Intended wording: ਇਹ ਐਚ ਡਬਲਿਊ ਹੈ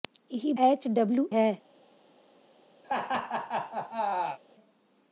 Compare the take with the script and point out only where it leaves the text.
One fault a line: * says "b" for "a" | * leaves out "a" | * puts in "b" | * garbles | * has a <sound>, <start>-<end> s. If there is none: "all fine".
* has a laugh, 2.8-4.4 s